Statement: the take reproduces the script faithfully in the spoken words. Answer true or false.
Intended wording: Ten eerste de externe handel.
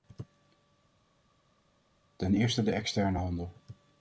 true